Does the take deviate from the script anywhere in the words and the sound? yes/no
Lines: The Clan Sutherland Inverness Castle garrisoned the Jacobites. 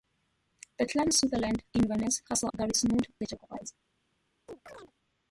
yes